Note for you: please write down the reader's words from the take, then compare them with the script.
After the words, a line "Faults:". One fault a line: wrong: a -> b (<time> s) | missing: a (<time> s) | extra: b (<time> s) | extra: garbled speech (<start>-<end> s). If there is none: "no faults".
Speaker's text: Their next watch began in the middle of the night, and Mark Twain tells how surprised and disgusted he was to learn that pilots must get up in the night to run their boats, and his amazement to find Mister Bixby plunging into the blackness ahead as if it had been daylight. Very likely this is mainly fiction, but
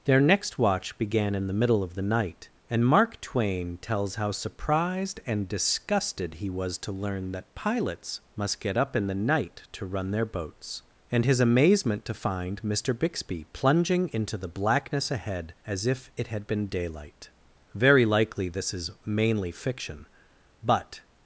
Their next watch began in the middle of the night, and Mark Twain tells how surprised and disgusted he was to learn that pilots must get up in the night to run their boats, and his amazement to find Mister Bixby plunging into the blackness ahead as if it had been daylight. Very likely this is mainly fiction, but
Faults:
no faults